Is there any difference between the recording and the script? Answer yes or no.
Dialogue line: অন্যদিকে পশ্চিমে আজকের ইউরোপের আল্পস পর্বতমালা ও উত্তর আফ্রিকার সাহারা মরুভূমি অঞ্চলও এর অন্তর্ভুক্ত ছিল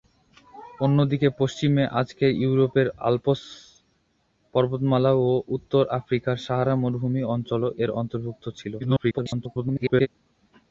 yes